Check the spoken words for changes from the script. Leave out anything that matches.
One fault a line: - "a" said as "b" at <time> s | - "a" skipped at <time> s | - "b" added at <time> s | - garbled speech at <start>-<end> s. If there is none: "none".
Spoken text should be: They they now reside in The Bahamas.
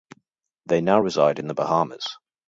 - "they" skipped at 0.8 s